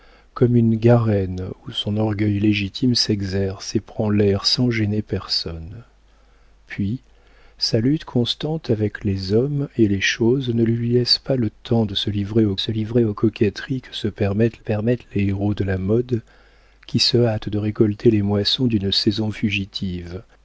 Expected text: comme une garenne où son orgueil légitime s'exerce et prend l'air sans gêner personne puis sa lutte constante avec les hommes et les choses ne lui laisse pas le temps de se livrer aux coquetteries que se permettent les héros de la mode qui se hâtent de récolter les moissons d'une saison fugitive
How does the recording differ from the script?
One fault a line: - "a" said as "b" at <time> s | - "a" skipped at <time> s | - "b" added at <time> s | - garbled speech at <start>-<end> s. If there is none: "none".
- "se livrer aux" added at 12.6 s
- "permettent" added at 14.6 s